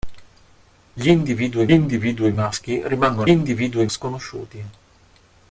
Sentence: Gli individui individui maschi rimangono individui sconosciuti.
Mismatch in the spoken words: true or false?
false